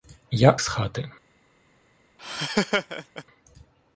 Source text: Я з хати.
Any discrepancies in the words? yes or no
no